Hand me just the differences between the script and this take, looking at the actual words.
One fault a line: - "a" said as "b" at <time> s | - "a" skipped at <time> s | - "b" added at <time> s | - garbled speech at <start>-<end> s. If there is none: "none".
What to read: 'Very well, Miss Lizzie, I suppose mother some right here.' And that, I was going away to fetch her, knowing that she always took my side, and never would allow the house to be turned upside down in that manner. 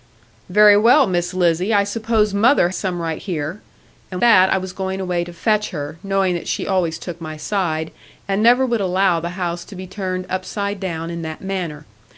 none